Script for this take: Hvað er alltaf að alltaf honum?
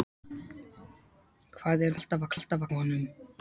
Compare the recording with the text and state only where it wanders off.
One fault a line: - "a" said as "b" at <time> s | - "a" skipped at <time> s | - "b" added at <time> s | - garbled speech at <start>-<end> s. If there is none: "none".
none